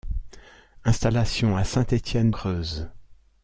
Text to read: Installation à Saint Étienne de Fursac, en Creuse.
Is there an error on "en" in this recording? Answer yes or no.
yes